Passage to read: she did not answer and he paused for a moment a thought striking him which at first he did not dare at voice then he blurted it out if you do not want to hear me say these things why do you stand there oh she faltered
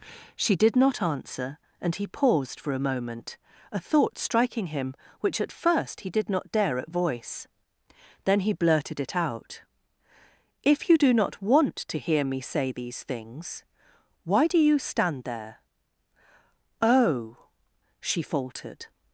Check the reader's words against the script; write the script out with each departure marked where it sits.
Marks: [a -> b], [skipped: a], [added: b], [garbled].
she did not answer and he paused for a moment a thought striking him which at first he did not dare at voice then he blurted it out if you do not want to hear me say these things why do you stand there oh she faltered